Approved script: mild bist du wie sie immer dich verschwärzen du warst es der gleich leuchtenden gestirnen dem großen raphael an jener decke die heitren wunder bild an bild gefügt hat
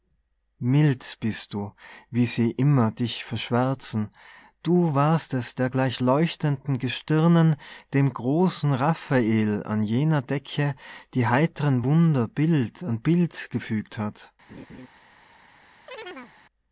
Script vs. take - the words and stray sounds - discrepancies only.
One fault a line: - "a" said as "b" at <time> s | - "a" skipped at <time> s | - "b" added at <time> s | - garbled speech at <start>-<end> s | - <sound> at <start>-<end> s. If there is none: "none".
- laugh at 14.5-14.9 s
- chirp at 15.9-16.4 s